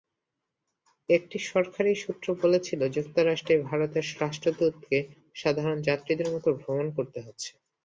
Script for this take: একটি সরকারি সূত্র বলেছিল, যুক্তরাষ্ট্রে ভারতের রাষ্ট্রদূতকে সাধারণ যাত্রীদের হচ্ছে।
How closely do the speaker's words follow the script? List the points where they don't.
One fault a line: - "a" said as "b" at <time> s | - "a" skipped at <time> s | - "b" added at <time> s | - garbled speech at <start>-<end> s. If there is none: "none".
- "মতো ভ্রমণ করতে" added at 6.3 s